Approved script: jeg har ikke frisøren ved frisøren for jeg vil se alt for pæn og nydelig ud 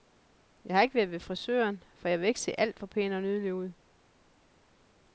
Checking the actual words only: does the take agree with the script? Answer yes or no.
no